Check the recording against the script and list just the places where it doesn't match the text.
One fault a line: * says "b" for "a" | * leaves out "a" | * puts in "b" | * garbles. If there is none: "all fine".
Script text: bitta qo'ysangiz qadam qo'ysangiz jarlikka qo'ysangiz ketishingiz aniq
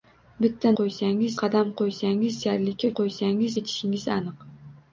all fine